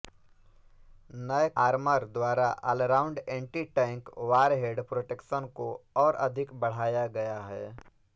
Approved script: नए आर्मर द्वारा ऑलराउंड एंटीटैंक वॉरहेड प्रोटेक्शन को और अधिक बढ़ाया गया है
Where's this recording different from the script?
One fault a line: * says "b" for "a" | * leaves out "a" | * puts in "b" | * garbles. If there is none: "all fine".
all fine